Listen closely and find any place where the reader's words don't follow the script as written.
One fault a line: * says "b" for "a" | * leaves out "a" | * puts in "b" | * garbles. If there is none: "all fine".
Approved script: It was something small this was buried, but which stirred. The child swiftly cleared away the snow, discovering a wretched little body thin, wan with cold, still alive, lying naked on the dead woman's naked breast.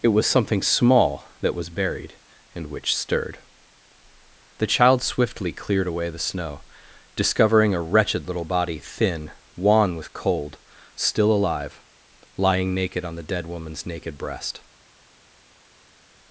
* says "that" for "this"
* says "and" for "but"